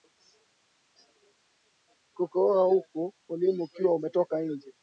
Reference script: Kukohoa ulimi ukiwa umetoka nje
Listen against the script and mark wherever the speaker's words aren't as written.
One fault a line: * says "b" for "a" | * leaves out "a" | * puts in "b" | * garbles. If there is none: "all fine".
* puts in "huku"